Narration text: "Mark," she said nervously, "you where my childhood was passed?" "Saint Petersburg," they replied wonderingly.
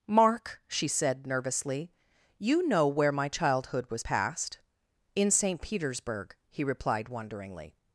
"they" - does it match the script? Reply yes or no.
no